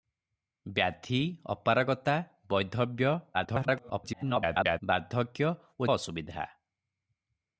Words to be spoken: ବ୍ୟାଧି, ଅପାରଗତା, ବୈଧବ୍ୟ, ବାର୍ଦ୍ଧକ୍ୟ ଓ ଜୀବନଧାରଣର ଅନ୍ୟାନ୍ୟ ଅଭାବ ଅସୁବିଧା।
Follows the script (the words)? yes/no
no